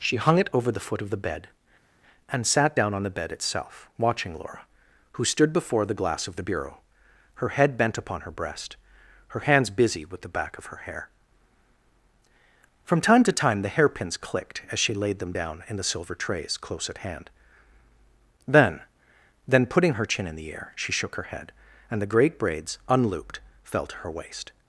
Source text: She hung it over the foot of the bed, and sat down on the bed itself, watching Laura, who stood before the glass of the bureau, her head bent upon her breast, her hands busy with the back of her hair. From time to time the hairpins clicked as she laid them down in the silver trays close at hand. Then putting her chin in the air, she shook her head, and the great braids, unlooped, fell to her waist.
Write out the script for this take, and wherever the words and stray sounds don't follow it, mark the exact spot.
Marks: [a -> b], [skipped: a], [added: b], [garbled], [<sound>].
She hung it over the foot of the bed, and sat down on the bed itself, watching Laura, who stood before the glass of the bureau, her head bent upon her breast, her hands busy with the back of her hair. From time to time the hairpins clicked as she laid them down in the silver trays close at hand. Then [added: Then] putting her chin in the air, she shook her head, and the great braids, unlooped, fell to her waist.